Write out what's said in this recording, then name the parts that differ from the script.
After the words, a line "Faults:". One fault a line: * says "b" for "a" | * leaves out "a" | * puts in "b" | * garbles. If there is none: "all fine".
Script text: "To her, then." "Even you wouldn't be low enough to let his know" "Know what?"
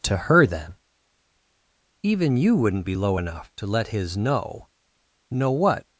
"To her, then." "Even you wouldn't be low enough to let his know" "Know what?"
Faults:
all fine